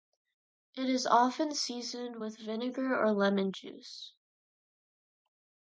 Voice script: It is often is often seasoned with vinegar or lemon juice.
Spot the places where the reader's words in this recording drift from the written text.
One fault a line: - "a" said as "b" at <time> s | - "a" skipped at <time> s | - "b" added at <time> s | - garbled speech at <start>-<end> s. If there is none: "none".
- "is often" skipped at 1.5 s